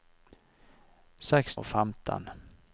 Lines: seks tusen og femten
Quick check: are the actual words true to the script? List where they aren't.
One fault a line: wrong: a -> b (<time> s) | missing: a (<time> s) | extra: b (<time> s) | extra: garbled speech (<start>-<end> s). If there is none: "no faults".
missing: tusen (1.6 s)